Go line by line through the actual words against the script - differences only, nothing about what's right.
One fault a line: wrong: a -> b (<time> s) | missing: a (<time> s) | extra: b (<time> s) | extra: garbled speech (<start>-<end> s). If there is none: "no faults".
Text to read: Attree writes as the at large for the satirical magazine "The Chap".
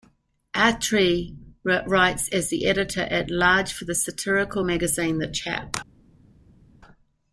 extra: editor (2.6 s)